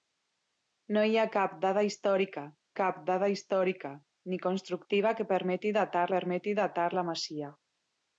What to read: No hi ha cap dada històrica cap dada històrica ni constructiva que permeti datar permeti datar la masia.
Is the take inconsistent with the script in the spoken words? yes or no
no